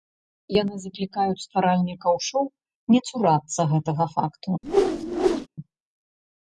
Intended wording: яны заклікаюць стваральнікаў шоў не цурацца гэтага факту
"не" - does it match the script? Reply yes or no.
yes